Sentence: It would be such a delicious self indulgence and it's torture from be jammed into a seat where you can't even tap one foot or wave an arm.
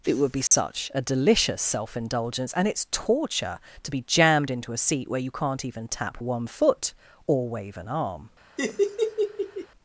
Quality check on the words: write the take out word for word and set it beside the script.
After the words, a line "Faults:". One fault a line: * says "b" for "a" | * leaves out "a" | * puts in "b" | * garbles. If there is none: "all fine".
It would be such a delicious self indulgence and it's torture to be jammed into a seat where you can't even tap one foot or wave an arm.
Faults:
* says "to" for "from"